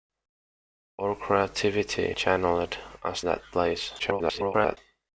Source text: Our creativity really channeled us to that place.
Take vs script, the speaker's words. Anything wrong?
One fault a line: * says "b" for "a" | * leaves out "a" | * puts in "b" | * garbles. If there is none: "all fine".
* leaves out "really"
* leaves out "to"
* garbles